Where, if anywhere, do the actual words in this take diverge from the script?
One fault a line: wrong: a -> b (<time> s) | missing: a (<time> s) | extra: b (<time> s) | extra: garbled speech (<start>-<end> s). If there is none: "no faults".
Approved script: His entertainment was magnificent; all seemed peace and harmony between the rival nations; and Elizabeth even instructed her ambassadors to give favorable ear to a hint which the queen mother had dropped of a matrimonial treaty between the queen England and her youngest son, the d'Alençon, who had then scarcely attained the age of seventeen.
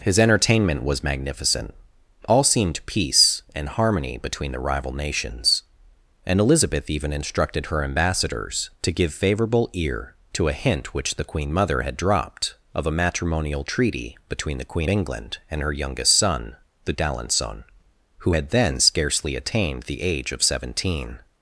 no faults